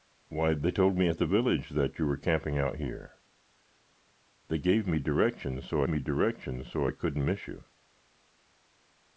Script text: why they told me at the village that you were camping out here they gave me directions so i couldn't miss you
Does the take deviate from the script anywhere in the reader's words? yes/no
yes